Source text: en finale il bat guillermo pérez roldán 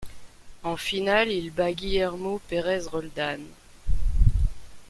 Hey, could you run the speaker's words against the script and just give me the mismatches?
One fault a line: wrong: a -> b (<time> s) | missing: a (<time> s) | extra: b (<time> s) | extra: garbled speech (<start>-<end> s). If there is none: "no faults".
no faults